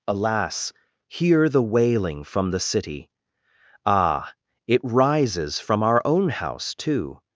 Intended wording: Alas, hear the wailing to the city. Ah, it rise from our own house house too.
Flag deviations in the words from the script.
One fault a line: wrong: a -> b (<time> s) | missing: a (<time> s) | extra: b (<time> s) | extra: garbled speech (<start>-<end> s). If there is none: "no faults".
wrong: to -> from (2.2 s)
wrong: rise -> rises (4.8 s)
missing: house (6.7 s)